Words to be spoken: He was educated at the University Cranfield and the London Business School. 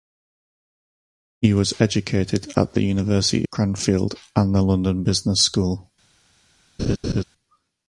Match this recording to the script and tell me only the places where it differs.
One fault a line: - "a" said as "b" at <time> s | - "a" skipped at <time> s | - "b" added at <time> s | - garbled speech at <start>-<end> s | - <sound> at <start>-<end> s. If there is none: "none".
- laugh at 6.8-7.2 s